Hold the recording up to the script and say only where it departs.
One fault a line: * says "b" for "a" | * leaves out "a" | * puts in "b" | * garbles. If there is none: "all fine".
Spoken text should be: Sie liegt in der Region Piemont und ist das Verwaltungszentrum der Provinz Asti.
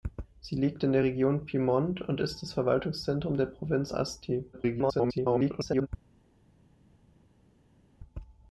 * garbles